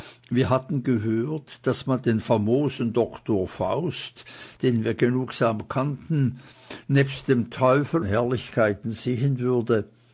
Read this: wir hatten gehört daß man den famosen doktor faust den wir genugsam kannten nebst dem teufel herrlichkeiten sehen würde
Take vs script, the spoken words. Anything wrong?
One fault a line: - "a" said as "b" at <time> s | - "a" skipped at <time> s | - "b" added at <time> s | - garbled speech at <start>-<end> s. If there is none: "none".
none